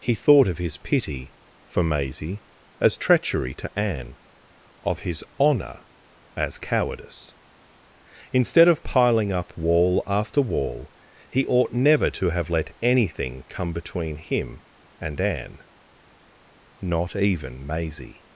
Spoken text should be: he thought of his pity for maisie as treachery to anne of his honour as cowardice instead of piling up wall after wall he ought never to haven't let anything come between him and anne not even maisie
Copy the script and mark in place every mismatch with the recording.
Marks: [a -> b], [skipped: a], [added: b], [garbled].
he thought of his pity for maisie as treachery to anne of his honour as cowardice instead of piling up wall after wall he ought never to [haven't -> have] let anything come between him and anne not even maisie